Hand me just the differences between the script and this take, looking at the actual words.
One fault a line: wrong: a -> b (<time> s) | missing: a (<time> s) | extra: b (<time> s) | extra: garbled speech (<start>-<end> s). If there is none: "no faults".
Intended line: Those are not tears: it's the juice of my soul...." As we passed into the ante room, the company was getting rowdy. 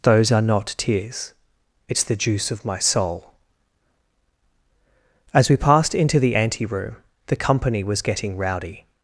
no faults